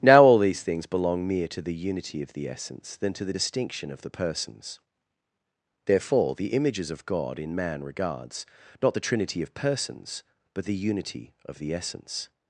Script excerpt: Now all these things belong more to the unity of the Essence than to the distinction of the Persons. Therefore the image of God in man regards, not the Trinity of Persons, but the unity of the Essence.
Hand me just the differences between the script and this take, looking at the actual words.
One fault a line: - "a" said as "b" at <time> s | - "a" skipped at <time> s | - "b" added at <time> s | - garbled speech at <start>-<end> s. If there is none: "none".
- "more" said as "mere" at 1.3 s
- "image" said as "images" at 6.5 s